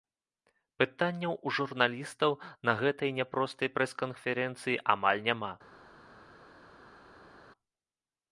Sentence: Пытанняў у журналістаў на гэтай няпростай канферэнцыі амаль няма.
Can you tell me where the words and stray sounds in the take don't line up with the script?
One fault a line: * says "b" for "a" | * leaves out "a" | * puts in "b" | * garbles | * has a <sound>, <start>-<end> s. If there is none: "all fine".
* puts in "прэс"